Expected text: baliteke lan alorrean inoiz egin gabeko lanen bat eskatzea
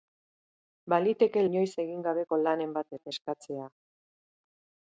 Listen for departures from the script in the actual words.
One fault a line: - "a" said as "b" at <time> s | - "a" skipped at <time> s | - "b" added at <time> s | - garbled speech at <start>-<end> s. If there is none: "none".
- "lan alorrean" skipped at 1.4 s
- "bat" added at 2.9 s